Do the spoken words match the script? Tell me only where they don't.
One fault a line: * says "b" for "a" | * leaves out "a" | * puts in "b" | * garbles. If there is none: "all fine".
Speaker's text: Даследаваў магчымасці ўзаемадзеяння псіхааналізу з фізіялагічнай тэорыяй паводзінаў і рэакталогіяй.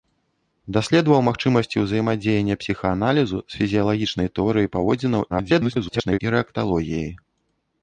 * garbles